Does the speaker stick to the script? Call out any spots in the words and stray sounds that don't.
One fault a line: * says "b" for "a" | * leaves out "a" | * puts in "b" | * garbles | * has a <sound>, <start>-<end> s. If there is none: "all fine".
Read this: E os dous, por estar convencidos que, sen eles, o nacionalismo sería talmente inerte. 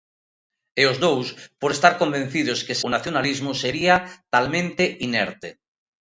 * leaves out "sen eles"